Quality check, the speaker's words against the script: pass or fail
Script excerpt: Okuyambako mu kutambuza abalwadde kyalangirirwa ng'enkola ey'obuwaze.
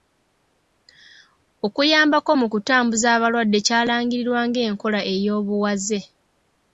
pass